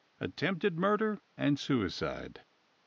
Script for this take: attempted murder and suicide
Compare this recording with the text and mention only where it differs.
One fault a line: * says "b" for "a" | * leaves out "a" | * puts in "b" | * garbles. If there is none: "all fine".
all fine